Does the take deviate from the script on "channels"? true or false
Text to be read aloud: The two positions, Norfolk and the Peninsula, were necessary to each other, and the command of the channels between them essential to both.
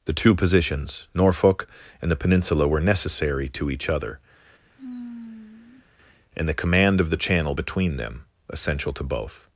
true